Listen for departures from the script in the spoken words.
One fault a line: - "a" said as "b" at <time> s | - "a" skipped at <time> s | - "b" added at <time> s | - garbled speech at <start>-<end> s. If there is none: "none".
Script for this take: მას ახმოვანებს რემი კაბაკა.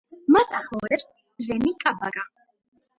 none